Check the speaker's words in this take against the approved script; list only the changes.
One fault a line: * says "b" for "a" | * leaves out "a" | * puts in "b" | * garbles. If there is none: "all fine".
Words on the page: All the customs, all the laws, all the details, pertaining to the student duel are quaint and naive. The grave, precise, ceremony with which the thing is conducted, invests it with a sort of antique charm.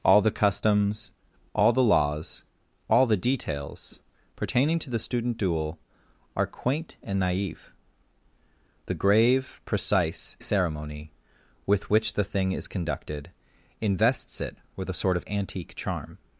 all fine